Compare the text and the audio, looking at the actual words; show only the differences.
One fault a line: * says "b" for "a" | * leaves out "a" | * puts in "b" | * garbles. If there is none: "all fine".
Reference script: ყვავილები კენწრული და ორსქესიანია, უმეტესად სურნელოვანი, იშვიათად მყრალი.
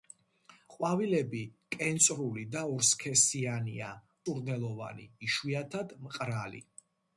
* leaves out "უმეტესად"